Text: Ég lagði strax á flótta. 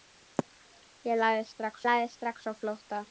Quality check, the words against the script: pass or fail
fail